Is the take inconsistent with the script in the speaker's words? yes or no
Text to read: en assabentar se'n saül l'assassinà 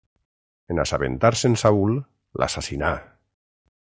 no